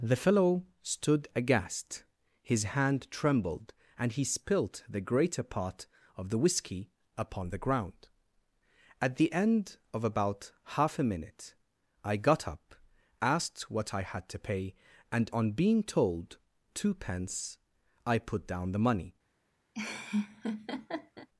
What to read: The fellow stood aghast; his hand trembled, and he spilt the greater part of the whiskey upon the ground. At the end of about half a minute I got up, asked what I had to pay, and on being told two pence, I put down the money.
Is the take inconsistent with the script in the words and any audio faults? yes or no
yes